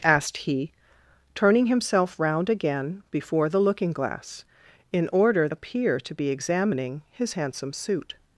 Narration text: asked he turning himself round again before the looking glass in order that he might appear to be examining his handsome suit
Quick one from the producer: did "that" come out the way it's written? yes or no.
no